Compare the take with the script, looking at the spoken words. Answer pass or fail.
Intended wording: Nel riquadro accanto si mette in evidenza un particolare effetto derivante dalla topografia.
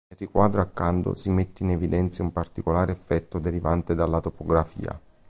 pass